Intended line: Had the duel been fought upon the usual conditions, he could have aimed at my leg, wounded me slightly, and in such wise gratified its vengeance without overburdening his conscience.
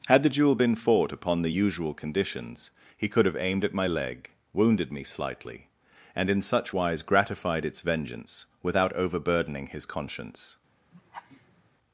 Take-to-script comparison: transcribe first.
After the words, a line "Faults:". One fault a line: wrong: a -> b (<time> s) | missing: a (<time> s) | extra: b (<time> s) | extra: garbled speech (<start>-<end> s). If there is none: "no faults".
Had the duel been fought upon the usual conditions, he could have aimed at my leg, wounded me slightly, and in such wise gratified its vengeance without overburdening his conscience.
Faults:
no faults